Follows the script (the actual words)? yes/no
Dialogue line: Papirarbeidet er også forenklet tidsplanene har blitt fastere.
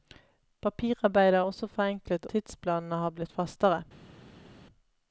yes